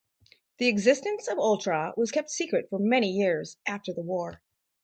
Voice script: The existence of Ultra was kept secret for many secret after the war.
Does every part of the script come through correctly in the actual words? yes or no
no